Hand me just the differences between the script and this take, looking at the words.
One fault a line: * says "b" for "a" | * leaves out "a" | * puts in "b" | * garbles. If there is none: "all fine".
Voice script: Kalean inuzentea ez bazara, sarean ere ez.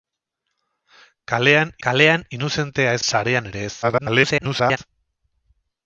* puts in "kalean"
* leaves out "bazara"
* garbles